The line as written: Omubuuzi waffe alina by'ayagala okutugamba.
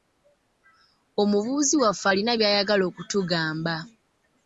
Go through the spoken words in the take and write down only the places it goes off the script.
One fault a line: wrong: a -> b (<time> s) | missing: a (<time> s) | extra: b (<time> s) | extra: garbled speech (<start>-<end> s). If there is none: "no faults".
no faults